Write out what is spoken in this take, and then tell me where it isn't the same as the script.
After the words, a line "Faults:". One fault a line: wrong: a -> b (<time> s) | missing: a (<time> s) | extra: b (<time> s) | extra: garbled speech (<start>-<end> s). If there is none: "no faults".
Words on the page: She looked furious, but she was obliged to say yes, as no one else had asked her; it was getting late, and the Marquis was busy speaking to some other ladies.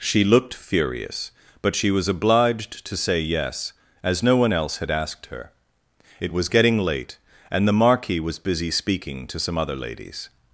She looked furious, but she was obliged to say yes, as no one else had asked her; it was getting late, and the Marquis was busy speaking to some other ladies.
Faults:
no faults